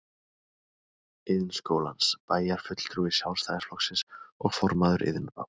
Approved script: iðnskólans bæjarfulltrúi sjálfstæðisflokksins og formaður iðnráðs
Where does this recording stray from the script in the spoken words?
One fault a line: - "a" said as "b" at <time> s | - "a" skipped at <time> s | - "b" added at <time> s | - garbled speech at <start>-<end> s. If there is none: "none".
none